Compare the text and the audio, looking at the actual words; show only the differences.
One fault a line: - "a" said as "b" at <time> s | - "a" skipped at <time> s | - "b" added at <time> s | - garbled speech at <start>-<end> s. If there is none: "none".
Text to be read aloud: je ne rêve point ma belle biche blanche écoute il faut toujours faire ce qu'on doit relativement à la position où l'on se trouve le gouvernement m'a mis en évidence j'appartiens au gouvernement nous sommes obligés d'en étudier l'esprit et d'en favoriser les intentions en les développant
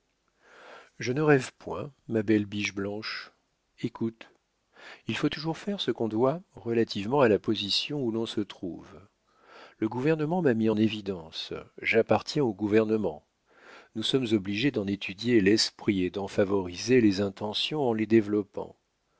none